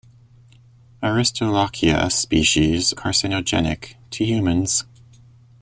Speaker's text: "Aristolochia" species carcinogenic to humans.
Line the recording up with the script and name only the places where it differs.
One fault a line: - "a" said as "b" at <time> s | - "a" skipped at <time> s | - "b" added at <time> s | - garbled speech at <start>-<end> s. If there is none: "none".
none